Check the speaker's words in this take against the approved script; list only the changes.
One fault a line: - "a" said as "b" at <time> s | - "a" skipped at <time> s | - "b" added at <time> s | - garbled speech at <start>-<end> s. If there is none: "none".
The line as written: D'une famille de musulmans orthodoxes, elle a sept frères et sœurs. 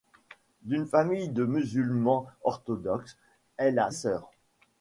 - "sept frères et" skipped at 3.9 s